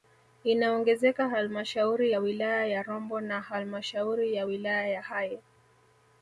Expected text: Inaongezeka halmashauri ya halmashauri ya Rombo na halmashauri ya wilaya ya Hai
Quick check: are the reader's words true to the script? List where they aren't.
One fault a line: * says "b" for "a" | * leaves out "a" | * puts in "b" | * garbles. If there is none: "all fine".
* says "wilaya" for "halmashauri"